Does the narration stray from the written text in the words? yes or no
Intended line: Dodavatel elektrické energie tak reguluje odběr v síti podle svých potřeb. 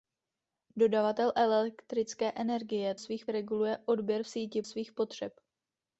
yes